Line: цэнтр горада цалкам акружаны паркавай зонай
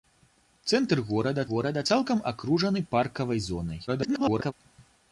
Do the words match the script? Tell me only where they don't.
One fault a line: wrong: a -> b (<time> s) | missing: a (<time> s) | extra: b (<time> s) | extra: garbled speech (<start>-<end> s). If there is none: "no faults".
extra: горада (1.5 s)
extra: garbled speech (3.9-4.5 s)